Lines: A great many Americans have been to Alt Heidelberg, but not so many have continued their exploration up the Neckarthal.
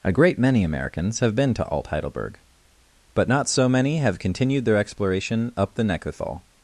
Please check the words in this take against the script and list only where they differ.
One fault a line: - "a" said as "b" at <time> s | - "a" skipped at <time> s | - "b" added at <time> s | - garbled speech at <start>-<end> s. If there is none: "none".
none